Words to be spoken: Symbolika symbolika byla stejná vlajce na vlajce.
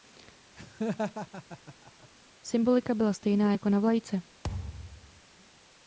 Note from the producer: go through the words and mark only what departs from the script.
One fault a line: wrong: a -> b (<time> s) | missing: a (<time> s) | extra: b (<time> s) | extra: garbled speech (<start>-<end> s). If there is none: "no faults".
missing: symbolika (2.9 s)
wrong: vlajce -> jako (3.5 s)